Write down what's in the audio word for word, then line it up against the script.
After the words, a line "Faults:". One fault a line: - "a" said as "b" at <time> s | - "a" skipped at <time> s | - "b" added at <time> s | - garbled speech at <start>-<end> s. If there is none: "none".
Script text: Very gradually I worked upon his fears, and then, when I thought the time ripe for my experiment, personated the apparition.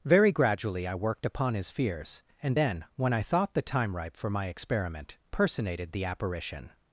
Very gradually I worked upon his fears, and then, when I thought the time ripe for my experiment, personated the apparition.
Faults:
none